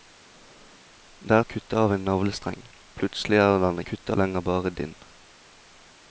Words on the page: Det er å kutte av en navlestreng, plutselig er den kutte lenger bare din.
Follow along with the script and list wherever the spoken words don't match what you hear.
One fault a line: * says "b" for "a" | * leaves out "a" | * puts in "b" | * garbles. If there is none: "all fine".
all fine